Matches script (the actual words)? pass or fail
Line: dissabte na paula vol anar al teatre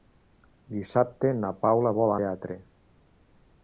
fail